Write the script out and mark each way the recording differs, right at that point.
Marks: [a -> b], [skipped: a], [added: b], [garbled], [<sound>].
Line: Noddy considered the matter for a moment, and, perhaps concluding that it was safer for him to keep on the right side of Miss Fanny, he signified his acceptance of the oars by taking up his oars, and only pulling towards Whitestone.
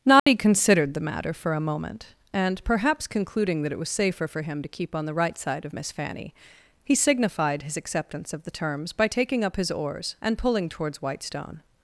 Noddy [dropout] considered the matter for a moment, and, perhaps concluding that it was safer for him to keep on the right side of Miss Fanny, he signified his acceptance of the [oars -> terms] by taking up his oars, and [skipped: only] pulling towards Whitestone.